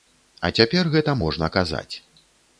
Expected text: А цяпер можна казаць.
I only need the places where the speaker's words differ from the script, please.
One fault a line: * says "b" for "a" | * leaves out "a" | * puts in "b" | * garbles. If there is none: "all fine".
* puts in "гэта"